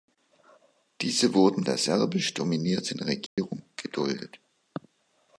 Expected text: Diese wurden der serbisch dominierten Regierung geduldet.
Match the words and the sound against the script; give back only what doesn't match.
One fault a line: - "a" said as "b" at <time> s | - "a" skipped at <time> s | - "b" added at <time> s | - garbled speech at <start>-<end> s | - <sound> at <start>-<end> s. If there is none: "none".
- dropout at 3.3-3.4 s